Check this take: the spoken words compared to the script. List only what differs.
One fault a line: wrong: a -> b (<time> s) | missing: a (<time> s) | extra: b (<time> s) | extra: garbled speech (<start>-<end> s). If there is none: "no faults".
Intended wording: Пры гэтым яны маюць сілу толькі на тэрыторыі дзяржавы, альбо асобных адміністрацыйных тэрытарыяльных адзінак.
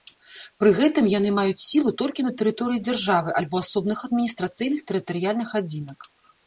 no faults